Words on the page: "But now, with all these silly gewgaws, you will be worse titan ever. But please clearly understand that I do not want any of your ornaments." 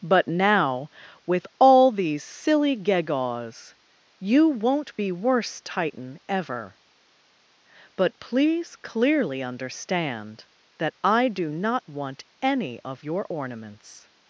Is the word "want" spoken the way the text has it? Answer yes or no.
yes